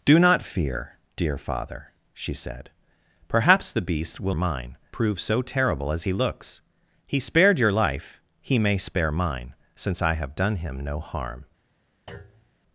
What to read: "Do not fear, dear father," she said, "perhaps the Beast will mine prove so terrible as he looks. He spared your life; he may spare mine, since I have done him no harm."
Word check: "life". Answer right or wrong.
right